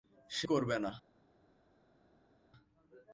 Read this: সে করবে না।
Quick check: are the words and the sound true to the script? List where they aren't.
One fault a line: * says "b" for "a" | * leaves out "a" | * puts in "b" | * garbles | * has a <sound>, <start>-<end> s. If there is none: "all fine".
all fine